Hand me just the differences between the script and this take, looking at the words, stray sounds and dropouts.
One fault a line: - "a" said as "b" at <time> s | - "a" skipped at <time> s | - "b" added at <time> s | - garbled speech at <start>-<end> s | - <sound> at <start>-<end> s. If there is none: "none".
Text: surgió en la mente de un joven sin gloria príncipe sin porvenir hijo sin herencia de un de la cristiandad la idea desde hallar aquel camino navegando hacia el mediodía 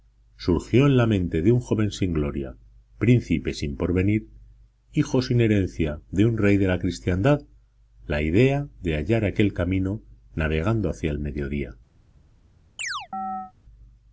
- "rey" added at 6.4 s
- "desde" said as "de" at 8.8 s
- chirp at 12.8-13.5 s